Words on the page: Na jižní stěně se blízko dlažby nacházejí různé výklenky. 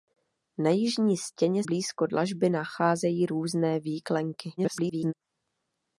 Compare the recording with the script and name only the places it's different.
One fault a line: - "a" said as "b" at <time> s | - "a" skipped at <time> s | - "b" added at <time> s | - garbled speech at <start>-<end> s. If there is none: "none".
- "se" skipped at 1.6 s
- garbled speech at 4.6-5.1 s